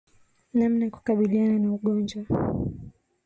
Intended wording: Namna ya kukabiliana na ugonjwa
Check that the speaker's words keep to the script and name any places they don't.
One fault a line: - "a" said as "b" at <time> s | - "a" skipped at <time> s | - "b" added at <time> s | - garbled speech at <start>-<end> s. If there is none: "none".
none